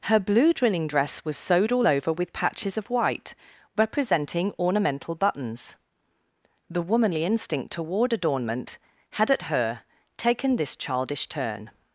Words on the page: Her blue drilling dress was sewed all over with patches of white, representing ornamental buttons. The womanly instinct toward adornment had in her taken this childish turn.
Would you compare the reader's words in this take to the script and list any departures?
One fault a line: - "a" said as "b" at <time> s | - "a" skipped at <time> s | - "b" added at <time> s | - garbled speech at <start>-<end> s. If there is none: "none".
- "in" said as "at" at 9.3 s